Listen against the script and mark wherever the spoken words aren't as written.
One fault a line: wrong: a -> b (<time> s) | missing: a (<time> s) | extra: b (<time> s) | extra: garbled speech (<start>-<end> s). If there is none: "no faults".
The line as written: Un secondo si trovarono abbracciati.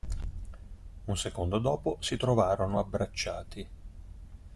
extra: dopo (1.6 s)